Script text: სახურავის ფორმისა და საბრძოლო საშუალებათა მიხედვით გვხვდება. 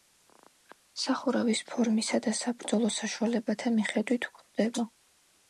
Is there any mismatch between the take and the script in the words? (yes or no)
no